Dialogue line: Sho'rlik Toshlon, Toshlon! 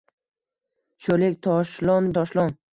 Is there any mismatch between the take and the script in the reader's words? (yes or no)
no